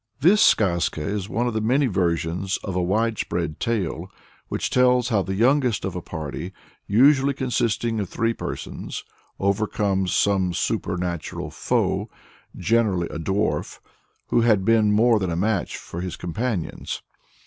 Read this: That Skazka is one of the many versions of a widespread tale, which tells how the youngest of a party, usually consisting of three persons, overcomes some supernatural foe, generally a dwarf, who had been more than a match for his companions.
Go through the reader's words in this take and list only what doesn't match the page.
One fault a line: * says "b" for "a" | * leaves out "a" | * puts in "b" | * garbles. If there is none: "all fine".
* says "This" for "That"